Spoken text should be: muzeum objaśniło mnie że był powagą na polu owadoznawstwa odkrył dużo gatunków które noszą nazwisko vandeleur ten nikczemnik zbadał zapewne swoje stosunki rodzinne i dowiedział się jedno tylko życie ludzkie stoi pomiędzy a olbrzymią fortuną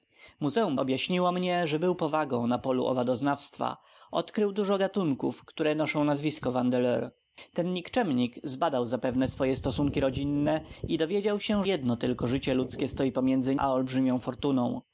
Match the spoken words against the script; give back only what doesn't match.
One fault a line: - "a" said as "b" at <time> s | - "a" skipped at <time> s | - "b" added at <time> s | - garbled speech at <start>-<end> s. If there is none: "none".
none